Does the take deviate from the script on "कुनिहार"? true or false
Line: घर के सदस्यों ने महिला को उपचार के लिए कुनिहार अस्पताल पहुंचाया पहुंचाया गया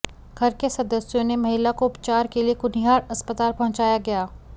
false